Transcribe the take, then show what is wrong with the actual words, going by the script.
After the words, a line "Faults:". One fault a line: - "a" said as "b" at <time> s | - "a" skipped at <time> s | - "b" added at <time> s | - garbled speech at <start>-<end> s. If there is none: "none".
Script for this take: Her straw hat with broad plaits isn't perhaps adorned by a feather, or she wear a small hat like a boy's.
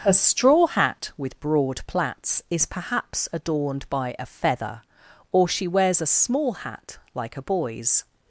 Her straw hat with broad plaits is perhaps adorned by a feather, or she wears a small hat like a boy's.
Faults:
- "isn't" said as "is" at 2.5 s
- "wear" said as "wears" at 5.7 s